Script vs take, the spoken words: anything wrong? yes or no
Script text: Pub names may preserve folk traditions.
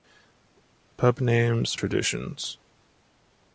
yes